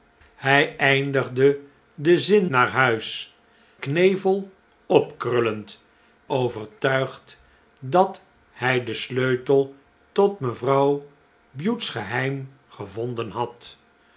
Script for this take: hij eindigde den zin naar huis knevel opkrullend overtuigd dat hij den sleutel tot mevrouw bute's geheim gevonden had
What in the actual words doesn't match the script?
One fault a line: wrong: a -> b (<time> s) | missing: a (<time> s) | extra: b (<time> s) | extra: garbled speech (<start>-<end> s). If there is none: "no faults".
no faults